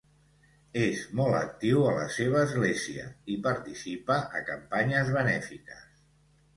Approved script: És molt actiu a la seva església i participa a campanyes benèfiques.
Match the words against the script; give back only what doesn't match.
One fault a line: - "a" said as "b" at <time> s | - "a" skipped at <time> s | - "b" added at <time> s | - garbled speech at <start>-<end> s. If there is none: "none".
none